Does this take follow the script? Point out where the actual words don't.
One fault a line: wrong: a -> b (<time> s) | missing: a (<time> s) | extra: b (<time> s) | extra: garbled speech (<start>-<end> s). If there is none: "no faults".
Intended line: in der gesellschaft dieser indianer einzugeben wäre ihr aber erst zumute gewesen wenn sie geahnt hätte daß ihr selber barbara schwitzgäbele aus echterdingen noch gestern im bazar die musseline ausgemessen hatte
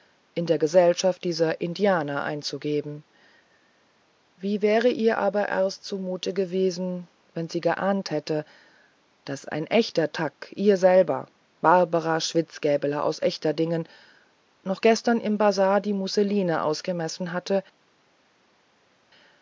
extra: wie (4.4 s)
extra: ein echter thag (9.5 s)